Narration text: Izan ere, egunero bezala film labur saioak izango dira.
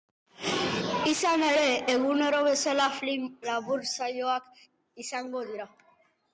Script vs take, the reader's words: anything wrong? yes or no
no